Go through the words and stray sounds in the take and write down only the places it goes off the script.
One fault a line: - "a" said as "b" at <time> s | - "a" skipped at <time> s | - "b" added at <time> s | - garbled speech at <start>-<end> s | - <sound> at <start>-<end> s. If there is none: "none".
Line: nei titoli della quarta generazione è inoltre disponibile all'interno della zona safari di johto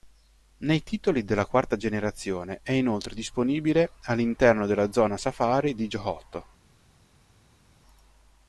none